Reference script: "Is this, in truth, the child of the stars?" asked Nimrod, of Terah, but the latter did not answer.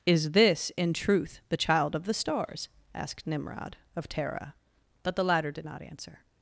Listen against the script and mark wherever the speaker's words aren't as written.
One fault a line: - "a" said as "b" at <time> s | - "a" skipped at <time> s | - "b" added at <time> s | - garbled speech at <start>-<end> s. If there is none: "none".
none